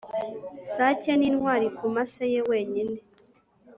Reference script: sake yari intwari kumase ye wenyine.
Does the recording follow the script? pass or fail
fail